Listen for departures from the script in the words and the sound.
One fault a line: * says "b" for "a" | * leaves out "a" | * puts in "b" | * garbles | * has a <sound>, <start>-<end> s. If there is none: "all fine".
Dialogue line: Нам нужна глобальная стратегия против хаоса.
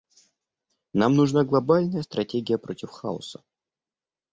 all fine